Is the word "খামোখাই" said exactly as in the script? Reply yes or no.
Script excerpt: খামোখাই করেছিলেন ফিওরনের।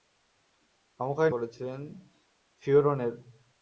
yes